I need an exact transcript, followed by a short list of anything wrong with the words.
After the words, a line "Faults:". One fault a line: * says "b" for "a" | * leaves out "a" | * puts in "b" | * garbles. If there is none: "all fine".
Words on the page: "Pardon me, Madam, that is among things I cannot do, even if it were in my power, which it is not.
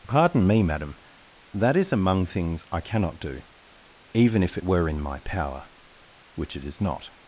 "Pardon me, Madam, that is among things I cannot do, even if it were in my power, which it is not.
Faults:
all fine